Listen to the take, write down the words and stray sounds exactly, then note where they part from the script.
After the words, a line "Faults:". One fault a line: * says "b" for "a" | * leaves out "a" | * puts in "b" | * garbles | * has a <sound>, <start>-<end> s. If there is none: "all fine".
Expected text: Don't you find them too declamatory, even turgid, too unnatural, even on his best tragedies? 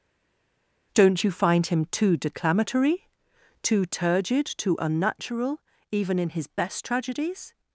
Don't you find him too declamatory, too turgid, too unnatural, even in his best tragedies?
Faults:
* says "him" for "them"
* says "too" for "even"
* says "in" for "on"